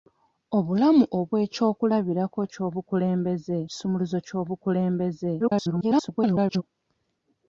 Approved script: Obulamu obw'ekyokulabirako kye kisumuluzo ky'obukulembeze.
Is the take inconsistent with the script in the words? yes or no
yes